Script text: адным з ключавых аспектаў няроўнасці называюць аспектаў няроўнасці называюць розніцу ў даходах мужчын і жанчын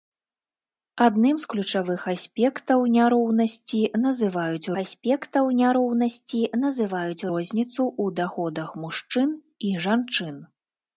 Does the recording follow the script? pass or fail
pass